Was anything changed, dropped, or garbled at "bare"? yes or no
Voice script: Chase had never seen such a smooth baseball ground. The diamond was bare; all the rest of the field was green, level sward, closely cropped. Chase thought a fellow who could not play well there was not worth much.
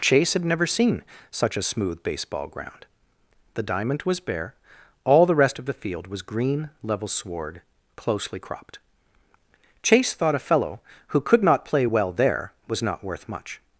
no